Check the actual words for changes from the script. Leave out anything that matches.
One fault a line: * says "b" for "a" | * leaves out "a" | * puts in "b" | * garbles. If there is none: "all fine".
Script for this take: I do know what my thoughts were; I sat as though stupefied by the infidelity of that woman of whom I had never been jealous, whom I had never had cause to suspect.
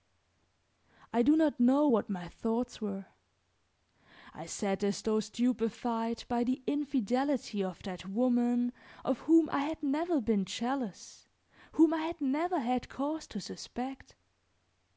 * puts in "not"